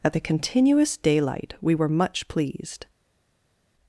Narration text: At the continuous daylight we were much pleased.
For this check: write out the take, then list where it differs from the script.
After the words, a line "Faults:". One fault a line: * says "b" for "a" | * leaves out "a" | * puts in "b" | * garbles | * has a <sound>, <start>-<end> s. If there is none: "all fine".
At the continuous daylight we were much pleased.
Faults:
all fine